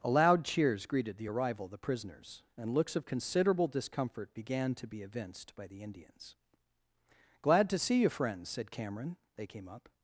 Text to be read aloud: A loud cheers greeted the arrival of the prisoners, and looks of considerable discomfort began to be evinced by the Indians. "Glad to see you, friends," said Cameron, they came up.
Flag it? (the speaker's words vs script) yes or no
no